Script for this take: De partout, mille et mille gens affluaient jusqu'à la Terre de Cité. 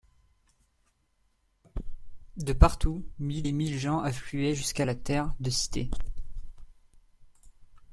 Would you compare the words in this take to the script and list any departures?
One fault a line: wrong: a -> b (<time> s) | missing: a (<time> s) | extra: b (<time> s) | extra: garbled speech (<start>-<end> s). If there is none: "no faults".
no faults